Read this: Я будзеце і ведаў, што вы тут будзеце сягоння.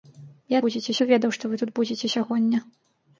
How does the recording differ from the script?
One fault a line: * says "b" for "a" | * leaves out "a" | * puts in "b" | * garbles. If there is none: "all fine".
all fine